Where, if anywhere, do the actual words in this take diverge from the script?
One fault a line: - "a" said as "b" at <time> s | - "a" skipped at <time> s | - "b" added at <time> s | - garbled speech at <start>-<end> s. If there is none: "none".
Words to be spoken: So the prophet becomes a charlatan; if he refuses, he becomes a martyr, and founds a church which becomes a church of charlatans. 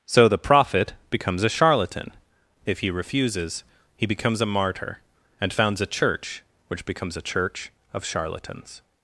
none